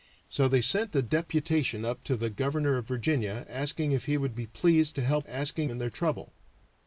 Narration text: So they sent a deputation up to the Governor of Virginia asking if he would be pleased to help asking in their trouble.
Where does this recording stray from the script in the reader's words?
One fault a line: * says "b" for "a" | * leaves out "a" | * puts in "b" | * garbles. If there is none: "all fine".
all fine